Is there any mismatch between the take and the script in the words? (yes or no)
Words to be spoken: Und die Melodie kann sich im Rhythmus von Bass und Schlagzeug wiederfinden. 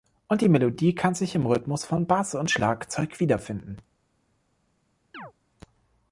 no